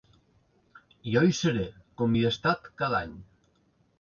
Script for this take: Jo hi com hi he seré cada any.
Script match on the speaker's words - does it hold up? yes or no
no